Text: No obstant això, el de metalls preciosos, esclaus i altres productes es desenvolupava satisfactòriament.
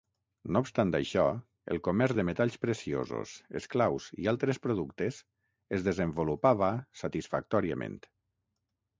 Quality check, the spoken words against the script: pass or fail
fail